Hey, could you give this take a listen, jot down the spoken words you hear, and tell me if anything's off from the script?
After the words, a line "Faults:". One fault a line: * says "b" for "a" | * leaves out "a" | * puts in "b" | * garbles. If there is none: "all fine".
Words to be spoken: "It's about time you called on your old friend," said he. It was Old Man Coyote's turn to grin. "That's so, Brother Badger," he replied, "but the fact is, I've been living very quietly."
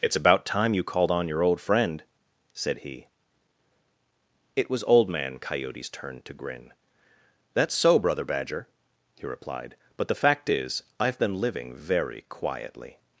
"It's about time you called on your old friend," said he. It was Old Man Coyote's turn to grin. "That's so, Brother Badger," he replied, "but the fact is, I've been living very quietly."
Faults:
all fine